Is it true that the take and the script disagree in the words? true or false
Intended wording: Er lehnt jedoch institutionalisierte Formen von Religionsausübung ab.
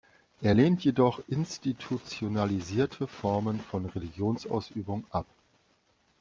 false